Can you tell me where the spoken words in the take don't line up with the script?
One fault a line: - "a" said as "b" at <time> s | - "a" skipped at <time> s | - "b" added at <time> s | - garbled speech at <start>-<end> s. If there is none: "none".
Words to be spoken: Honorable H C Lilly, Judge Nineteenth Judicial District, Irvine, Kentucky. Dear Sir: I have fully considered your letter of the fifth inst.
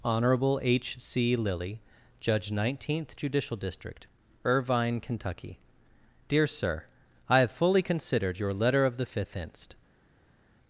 none